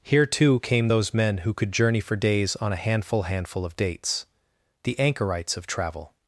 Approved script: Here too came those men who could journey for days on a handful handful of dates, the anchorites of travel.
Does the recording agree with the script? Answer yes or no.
yes